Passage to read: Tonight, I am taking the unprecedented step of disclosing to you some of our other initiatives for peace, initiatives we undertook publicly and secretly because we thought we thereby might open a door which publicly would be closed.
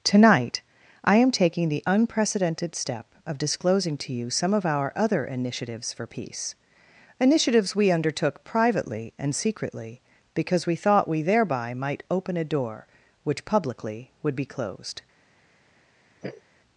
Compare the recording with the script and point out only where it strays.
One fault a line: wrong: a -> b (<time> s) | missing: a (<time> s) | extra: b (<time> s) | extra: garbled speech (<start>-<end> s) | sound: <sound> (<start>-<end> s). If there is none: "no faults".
wrong: publicly -> privately (8.5 s)
sound: sniff (16.2-16.4 s)